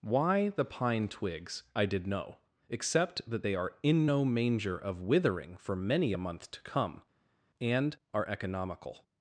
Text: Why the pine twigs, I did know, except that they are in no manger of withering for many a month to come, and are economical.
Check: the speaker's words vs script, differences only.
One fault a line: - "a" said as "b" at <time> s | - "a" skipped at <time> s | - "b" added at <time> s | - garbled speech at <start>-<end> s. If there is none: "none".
none